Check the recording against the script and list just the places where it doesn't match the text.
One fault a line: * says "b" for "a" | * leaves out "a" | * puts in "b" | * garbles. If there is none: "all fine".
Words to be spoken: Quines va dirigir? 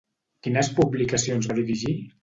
* puts in "publicacions"